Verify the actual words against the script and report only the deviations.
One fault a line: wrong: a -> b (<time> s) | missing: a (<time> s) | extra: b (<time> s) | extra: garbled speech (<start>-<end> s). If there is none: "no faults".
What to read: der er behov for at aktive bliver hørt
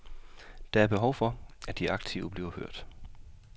extra: de (1.8 s)